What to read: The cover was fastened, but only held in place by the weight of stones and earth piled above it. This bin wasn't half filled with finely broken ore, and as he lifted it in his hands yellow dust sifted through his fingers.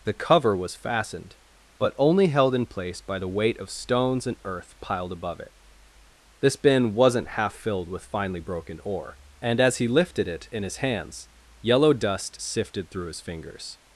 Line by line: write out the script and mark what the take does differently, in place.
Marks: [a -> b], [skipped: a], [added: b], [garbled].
The cover was fastened, but only held in place by the weight of stones and earth piled above it. This bin wasn't half filled with finely broken ore, and as he lifted it in his hands yellow dust sifted through his fingers.